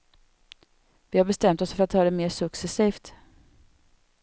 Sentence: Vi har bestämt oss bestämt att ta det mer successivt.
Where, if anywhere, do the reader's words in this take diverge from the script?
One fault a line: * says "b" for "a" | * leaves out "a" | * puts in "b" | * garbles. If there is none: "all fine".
* says "för" for "bestämt"